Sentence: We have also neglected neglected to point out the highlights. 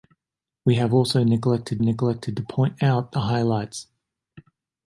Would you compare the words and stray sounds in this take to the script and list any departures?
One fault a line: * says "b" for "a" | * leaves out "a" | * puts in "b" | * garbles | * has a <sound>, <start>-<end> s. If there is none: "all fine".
all fine